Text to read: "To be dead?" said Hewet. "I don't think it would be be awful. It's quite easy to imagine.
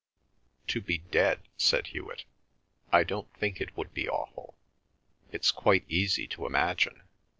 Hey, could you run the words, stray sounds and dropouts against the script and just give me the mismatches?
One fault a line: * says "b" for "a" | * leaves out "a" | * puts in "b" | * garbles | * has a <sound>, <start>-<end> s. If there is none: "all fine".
* leaves out "be"